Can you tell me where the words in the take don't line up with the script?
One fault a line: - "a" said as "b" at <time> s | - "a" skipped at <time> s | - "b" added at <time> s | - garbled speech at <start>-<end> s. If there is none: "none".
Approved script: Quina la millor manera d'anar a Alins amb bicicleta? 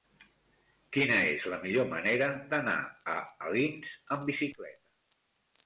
- "és" added at 1.3 s